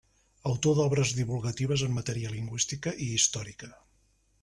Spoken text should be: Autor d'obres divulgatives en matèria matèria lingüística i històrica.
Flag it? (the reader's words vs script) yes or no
yes